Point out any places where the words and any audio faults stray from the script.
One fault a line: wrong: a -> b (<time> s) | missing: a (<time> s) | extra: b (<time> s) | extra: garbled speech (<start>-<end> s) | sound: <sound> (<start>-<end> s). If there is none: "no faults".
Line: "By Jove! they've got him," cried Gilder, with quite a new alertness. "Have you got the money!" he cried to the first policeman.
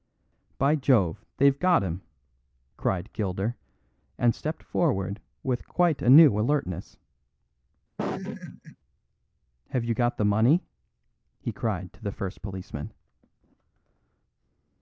extra: and stepped forward (4.2 s)
sound: laugh (8.0-8.8 s)